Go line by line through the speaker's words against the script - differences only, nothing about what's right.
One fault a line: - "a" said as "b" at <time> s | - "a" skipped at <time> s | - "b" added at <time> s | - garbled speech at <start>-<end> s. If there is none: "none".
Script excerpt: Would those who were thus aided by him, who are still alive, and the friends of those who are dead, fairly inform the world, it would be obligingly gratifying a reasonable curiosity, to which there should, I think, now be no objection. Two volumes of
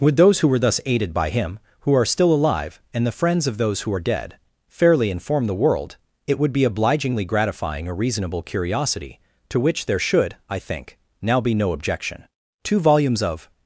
none